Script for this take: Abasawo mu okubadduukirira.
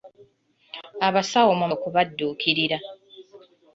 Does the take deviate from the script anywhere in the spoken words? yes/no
no